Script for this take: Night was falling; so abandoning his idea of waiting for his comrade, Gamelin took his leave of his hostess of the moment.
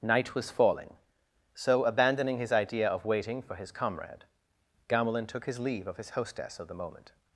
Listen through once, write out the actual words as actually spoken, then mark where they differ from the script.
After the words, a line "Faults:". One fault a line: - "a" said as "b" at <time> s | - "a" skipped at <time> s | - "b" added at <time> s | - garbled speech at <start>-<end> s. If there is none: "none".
Night was falling; so abandoning his idea of waiting for his comrade, Gamelin took his leave of his hostess of the moment.
Faults:
none